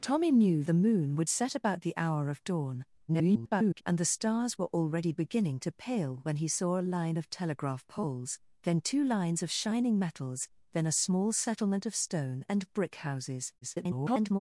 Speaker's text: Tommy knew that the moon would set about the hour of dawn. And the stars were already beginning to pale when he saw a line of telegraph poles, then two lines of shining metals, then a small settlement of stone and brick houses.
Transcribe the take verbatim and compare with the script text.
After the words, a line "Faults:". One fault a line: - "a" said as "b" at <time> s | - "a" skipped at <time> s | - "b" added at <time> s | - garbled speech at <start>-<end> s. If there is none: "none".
Tommy knew the moon would set about the hour of dawn. [garbled] And the stars were already beginning to pale when he saw a line of telegraph poles, then two lines of shining metals, then a small settlement of stone and brick houses. [garbled]
Faults:
- "that" skipped at 0.6 s
- garbled speech at 3.1-3.8 s
- garbled speech at 13.6-14.4 s